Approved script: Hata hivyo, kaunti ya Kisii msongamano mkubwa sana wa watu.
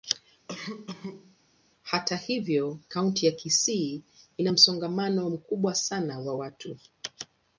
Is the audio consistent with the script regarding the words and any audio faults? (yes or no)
no